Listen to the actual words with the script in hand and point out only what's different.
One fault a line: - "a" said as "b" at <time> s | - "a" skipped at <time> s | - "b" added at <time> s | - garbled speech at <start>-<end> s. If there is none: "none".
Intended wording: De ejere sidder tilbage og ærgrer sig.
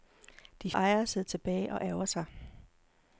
none